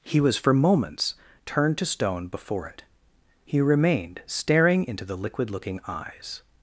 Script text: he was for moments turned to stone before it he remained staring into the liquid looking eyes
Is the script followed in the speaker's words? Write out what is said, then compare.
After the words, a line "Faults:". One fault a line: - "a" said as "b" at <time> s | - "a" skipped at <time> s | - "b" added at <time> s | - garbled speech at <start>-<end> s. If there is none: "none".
he was for moments turned to stone before it he remained staring into the liquid looking eyes
Faults:
none